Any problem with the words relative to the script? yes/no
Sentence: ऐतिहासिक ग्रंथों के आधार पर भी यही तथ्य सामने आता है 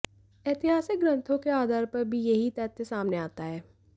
no